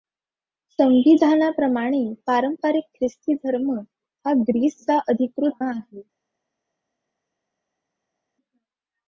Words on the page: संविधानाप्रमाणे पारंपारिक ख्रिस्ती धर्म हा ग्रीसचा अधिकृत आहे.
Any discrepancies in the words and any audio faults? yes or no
no